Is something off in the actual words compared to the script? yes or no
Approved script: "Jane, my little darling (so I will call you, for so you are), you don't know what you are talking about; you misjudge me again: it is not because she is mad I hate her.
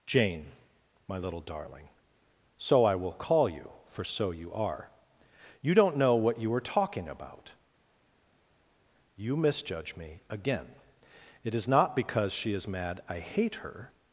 no